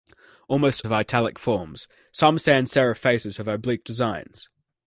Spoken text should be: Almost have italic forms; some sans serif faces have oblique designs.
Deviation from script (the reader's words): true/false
false